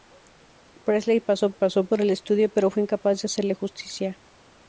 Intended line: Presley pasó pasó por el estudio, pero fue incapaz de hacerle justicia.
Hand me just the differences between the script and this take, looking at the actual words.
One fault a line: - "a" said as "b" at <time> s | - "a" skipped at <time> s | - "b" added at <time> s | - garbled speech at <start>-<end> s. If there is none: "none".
none